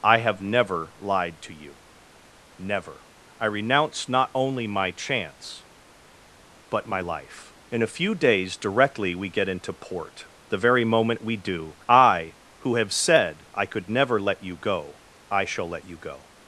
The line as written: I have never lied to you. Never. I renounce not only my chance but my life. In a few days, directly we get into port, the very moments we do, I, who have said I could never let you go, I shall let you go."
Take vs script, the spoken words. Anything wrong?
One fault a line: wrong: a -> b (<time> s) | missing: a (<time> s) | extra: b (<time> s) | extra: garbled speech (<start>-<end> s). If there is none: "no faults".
wrong: moments -> moment (10.8 s)